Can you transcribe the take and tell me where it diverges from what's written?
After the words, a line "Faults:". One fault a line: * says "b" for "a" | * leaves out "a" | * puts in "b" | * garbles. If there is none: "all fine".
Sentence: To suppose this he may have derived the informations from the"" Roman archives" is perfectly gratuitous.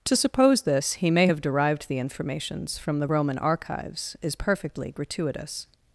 To suppose this he may have derived the informations from the"" Roman archives" is perfectly gratuitous.
Faults:
all fine